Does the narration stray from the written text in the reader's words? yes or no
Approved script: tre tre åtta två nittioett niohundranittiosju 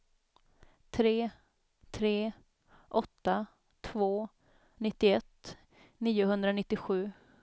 no